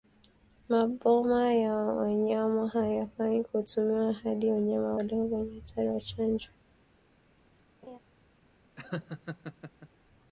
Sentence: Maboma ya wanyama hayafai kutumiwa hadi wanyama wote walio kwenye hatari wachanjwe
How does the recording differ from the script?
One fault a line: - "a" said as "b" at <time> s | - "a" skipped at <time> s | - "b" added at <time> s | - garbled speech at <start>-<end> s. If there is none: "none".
- "wote" skipped at 4.9 s